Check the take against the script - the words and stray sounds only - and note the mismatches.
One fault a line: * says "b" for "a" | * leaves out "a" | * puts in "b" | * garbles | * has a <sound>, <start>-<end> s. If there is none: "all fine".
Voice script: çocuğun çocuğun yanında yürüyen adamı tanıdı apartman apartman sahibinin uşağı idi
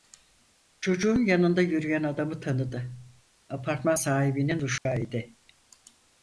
* leaves out "çocuğun"
* leaves out "apartman"
* has a dropout, 4.8-4.9 s